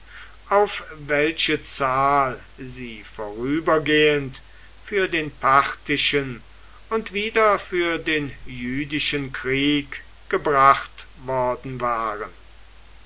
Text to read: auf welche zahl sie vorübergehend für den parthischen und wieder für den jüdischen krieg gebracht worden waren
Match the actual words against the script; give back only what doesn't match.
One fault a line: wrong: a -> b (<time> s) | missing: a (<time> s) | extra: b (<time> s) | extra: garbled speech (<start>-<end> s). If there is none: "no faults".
no faults